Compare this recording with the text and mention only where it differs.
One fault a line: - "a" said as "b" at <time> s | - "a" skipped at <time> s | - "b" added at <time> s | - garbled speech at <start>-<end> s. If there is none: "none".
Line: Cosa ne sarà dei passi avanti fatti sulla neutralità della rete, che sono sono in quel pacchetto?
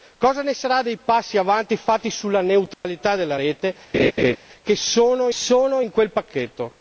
none